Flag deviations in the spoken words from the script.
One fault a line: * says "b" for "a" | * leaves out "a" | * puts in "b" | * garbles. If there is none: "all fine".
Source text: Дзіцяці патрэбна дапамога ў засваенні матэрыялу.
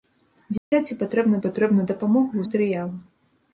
* puts in "патрэбна"
* leaves out "засваенні"